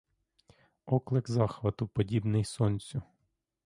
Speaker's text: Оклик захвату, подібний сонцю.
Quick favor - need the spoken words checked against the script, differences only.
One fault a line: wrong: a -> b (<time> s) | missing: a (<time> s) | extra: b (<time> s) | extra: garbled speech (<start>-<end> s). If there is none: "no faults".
no faults